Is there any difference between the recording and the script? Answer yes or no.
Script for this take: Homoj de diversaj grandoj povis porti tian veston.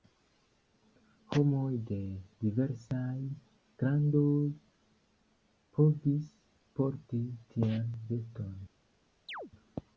no